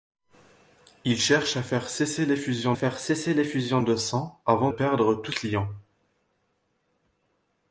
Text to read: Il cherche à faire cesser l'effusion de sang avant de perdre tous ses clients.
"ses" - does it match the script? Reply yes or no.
no